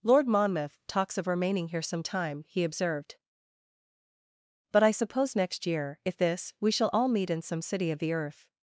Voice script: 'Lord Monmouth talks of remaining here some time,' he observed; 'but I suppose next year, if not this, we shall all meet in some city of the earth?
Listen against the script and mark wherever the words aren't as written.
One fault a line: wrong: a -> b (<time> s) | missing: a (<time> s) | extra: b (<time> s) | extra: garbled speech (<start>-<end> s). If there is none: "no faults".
missing: not (6.2 s)